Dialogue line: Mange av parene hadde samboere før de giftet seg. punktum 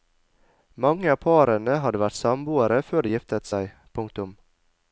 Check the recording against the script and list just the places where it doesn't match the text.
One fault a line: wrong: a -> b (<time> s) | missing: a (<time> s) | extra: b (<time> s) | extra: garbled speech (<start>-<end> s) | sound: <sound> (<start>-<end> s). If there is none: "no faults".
extra: vært (2.0 s)